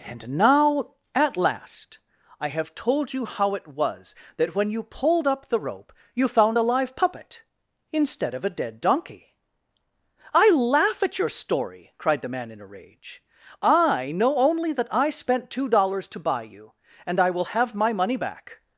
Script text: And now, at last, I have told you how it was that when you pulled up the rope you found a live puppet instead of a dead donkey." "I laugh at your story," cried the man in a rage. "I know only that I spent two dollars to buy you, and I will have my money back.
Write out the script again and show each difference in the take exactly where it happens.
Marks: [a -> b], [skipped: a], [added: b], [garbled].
And now, at last, I have told you how it was that when you pulled up the rope you found a live puppet instead of a dead donkey." "I laugh at your story," cried the man in a rage. "I know only that I spent two dollars to buy you, and I will have my money back.